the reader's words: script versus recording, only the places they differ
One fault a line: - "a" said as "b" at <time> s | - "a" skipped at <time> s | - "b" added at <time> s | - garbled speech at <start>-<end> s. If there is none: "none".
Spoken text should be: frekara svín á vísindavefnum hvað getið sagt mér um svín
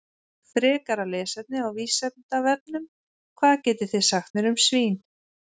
- "svín" said as "lesefni" at 1.1 s
- "þið" added at 4.0 s